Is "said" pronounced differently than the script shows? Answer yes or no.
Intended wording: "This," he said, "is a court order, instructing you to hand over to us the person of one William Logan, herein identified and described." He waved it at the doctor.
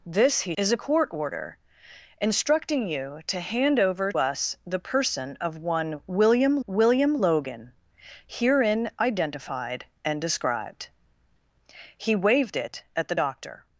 yes